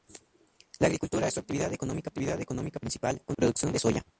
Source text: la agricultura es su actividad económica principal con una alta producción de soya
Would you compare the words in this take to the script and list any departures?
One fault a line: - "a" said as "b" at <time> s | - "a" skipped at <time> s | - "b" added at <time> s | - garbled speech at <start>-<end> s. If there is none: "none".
- "actividad económica" added at 2.1 s
- "una alta" skipped at 3.4 s